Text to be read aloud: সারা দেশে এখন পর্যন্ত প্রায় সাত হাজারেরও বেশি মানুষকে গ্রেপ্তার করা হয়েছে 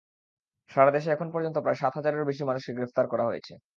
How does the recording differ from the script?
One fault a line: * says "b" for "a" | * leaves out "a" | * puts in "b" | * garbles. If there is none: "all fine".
all fine